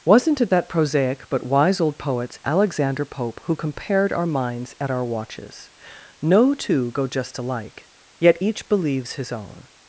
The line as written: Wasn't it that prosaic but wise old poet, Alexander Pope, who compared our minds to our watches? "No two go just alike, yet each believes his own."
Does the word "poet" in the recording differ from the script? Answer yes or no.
yes